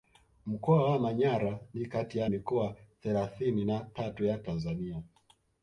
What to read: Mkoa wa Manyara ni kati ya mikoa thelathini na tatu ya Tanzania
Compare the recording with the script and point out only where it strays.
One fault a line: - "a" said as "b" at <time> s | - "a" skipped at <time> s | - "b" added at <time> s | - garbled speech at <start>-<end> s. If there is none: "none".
none